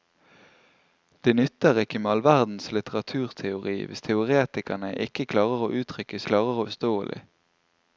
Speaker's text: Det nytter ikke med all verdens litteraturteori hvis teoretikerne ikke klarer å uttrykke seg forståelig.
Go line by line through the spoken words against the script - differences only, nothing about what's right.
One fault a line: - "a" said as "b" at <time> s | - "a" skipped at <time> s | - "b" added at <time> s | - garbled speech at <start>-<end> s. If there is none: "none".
- "seg" said as "klarer" at 6.3 s